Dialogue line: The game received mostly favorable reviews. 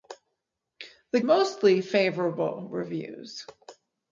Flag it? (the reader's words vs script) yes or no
yes